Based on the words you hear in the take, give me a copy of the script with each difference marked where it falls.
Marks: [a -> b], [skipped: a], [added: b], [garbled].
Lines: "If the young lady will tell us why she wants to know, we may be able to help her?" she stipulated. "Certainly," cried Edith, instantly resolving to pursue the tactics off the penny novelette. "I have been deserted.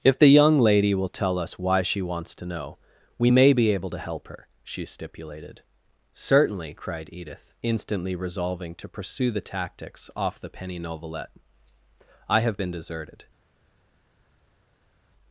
"If the young lady will tell us why she wants to know, we may be able to help her?" she stipulated. "Certainly," cried Edith, instantly resolving to pursue the tactics off the penny novelette. "I have been deserted.